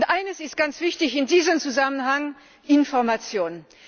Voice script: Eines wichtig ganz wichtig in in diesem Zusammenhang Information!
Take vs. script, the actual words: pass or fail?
fail